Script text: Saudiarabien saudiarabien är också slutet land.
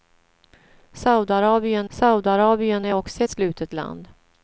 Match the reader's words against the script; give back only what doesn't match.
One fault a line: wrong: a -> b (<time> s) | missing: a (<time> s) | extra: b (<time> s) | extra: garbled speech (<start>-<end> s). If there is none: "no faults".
no faults